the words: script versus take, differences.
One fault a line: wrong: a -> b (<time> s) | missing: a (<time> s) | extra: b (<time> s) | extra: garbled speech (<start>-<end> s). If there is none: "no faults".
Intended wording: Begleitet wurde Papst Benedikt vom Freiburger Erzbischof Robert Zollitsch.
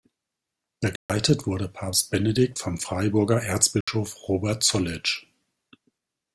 no faults